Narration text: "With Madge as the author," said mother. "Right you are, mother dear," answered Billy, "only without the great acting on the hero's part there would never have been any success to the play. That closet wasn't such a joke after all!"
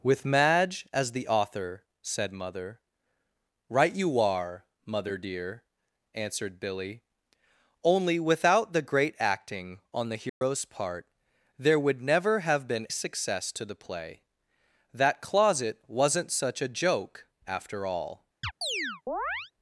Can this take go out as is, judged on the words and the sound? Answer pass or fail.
fail